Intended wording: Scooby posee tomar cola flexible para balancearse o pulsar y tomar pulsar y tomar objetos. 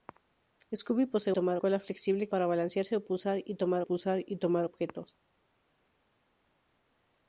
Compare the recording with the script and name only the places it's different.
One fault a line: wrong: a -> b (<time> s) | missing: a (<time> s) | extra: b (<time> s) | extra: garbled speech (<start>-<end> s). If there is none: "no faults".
no faults